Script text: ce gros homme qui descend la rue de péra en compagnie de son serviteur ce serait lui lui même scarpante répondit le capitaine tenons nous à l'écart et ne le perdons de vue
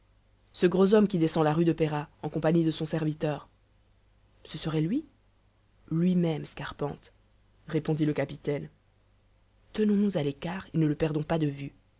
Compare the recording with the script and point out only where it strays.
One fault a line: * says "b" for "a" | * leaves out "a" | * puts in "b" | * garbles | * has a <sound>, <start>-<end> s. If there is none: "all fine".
* puts in "pas"